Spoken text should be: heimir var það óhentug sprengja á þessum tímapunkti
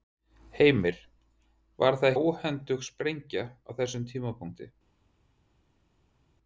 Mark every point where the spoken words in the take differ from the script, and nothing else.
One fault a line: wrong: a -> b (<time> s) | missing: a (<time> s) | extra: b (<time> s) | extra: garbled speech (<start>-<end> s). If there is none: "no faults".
no faults